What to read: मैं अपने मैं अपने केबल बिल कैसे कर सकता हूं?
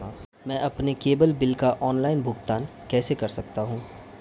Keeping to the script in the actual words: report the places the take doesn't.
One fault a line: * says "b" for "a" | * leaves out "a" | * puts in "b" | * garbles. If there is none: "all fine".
* says "केबल बिल का ऑनलाइन भुगतान" for "मैं अपने केबल बिल"